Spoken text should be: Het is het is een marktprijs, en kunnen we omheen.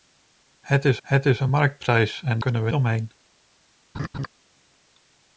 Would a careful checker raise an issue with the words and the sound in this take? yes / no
yes